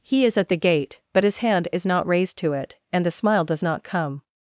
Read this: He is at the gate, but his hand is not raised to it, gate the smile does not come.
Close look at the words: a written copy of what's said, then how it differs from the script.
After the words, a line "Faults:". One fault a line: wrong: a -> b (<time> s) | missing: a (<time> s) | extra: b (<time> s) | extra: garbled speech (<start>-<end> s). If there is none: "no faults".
He is at the gate, but his hand is not raised to it, and the smile does not come.
Faults:
wrong: gate -> and (2.9 s)